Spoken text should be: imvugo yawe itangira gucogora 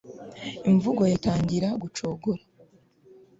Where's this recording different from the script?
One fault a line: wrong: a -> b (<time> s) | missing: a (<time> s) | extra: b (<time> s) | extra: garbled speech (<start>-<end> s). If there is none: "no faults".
missing: yawe (1.0 s)